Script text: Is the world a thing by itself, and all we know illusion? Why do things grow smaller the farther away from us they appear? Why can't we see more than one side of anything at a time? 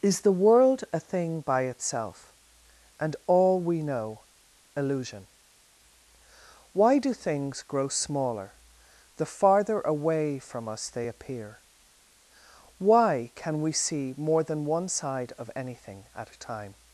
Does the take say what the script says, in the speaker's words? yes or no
no